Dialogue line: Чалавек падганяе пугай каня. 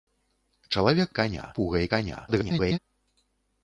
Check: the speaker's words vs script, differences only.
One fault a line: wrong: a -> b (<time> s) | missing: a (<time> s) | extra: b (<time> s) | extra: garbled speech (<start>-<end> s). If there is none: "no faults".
wrong: падганяе -> каня (1.2 s)
extra: garbled speech (2.3-2.8 s)